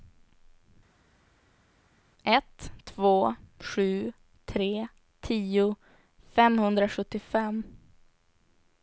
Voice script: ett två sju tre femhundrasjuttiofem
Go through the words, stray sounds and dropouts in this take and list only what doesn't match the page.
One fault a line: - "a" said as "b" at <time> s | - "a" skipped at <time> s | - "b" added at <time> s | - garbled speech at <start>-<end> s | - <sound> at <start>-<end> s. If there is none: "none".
- "tio" added at 5.2 s